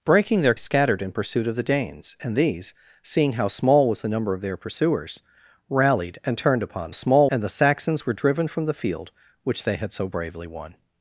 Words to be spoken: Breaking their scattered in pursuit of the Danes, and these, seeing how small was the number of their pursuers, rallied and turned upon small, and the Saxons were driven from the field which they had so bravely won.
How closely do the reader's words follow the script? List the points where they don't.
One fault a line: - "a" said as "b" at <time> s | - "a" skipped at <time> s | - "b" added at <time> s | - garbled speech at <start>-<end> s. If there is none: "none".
none